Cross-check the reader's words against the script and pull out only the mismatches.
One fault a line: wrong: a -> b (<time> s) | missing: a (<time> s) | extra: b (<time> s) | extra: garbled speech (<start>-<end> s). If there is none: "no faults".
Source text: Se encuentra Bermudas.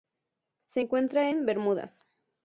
extra: en (1.3 s)